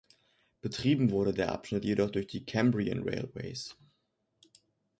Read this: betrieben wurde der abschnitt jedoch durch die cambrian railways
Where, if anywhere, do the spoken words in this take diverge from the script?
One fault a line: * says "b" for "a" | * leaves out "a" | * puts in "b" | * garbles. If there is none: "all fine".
all fine